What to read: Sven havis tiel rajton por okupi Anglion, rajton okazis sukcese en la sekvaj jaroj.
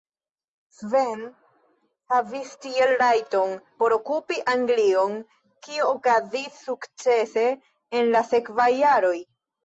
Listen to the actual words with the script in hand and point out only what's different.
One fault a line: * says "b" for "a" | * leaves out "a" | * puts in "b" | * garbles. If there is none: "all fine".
* says "kio" for "rajton"